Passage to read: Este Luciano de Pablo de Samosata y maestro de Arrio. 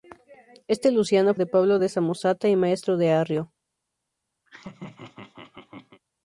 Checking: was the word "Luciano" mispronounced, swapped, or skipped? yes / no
no